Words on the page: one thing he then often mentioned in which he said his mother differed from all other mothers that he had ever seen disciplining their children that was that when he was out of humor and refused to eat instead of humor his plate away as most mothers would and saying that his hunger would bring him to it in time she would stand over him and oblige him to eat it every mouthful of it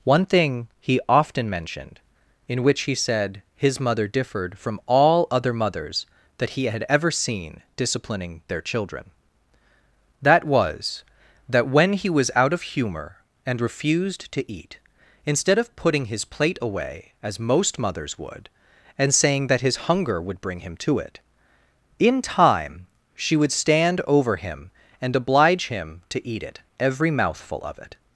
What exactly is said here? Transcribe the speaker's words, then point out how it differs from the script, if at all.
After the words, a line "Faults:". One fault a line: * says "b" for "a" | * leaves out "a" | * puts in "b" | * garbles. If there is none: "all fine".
one thing he often mentioned in which he said his mother differed from all other mothers that he had ever seen disciplining their children that was that when he was out of humor and refused to eat instead of putting his plate away as most mothers would and saying that his hunger would bring him to it in time she would stand over him and oblige him to eat it every mouthful of it
Faults:
* leaves out "then"
* says "putting" for "humor"